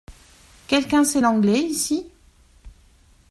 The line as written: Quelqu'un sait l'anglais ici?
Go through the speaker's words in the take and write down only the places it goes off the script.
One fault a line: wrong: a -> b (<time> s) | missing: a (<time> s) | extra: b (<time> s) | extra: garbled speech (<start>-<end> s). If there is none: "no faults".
no faults